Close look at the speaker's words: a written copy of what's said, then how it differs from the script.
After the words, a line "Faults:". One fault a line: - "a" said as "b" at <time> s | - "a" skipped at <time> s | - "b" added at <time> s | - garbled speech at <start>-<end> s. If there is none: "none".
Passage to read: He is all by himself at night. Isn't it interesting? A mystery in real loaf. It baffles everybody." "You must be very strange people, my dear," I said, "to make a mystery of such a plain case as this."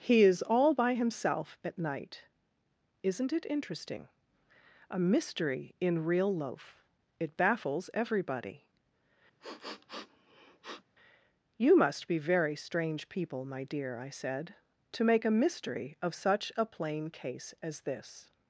He is all by himself at night. Isn't it interesting? A mystery in real loaf. It baffles everybody." "You must be very strange people, my dear," I said, "to make a mystery of such a plain case as this."
Faults:
none